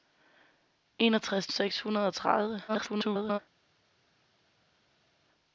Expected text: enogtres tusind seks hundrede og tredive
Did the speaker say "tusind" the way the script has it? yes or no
no